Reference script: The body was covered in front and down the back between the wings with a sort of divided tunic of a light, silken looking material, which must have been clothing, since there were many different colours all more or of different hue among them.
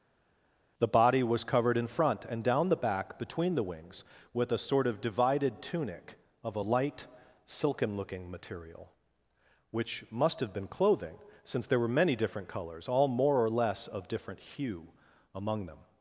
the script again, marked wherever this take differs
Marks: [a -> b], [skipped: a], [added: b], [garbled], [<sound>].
The body was covered in front and down the back between the wings with a sort of divided tunic of a light, silken looking material, which must have been clothing, since there were many different colours all more or [added: less] of different hue among them.